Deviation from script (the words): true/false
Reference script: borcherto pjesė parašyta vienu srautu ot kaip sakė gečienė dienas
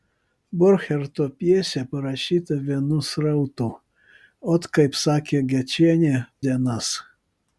false